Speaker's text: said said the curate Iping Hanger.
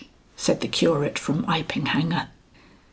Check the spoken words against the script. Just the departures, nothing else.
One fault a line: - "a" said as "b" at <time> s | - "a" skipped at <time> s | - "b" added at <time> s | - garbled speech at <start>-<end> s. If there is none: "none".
- "said" skipped at 0.6 s
- "from" added at 1.2 s